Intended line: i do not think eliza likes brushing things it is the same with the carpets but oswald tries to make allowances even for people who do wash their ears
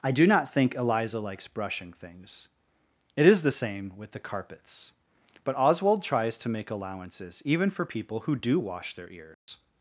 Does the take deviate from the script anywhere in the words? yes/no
no